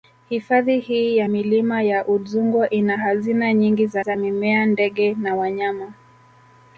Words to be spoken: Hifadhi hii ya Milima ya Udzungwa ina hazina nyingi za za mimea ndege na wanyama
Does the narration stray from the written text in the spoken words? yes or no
no